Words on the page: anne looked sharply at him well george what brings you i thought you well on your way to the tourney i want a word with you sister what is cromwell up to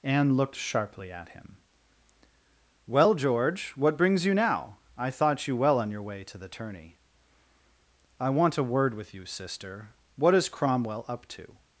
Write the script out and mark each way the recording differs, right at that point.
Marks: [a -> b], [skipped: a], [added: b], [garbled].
anne looked sharply at him well george what brings you [added: now] i thought you well on your way to the tourney i want a word with you sister what is cromwell up to